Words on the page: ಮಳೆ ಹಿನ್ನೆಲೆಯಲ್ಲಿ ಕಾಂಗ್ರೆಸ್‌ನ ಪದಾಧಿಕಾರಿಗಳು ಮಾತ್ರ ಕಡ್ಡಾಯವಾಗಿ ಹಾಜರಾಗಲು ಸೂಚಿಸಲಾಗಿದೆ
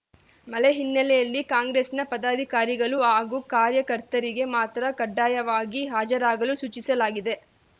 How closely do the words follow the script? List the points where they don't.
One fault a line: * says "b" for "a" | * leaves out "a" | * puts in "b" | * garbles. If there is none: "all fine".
* puts in "ಹಾಗೂ ಕಾರ್ಯಕರ್ತರಿಗೆ"